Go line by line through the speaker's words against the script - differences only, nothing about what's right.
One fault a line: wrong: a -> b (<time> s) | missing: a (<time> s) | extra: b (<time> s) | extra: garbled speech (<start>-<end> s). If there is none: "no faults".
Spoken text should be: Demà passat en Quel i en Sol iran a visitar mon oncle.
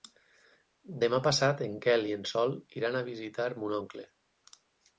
no faults